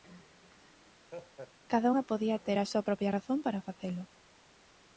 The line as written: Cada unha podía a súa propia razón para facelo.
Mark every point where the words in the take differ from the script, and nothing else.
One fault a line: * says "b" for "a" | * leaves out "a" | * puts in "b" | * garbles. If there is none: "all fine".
* puts in "ter"